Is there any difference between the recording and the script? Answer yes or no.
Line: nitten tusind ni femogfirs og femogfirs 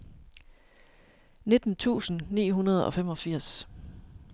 yes